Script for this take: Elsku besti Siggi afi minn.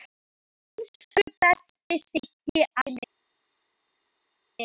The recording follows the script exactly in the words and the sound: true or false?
false